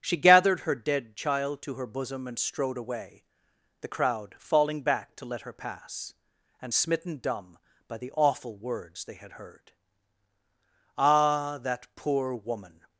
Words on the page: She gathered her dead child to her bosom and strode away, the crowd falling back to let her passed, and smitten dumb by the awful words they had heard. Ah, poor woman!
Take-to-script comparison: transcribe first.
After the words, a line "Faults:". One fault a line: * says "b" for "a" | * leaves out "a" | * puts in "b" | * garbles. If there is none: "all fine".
She gathered her dead child to her bosom and strode away, the crowd falling back to let her pass, and smitten dumb by the awful words they had heard. Ah, that poor woman!
Faults:
* says "pass" for "passed"
* puts in "that"